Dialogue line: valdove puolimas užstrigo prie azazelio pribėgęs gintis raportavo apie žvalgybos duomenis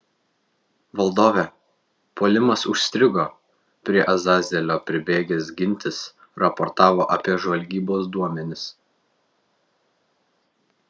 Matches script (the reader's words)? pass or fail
pass